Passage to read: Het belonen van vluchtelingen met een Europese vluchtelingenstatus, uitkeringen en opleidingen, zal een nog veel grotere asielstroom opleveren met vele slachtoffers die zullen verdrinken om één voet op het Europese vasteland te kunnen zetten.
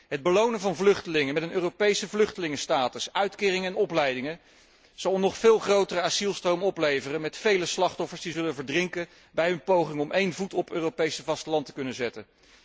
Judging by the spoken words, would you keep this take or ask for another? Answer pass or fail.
fail